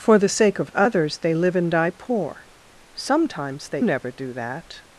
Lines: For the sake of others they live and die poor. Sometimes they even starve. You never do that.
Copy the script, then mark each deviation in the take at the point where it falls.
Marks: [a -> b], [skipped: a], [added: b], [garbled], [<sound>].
For the sake of others they live and die poor. Sometimes they [skipped: even starve. You] never do that.